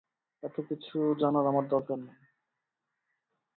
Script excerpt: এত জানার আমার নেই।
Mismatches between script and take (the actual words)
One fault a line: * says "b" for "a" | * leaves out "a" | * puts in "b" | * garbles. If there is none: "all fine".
* puts in "কিছু"
* puts in "দরকার"